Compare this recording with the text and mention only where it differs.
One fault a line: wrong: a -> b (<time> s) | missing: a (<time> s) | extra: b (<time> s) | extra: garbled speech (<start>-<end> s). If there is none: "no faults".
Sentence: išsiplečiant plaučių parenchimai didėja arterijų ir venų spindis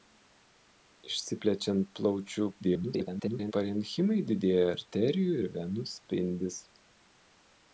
extra: garbled speech (2.6-3.5 s)